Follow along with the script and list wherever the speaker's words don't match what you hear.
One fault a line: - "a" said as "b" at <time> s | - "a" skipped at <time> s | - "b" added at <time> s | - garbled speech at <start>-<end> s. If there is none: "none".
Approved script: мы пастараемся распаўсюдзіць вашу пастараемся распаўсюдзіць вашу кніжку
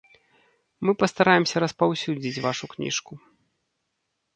- "пастараемся распаўсюдзіць вашу" skipped at 2.6 s